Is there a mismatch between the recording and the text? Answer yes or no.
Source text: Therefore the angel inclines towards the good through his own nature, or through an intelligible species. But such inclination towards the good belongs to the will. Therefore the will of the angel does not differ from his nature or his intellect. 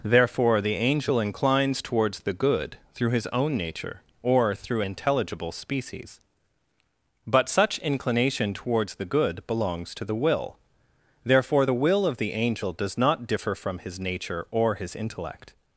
yes